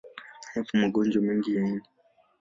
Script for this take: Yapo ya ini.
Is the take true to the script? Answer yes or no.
no